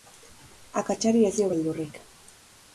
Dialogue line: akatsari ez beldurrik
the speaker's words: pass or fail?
fail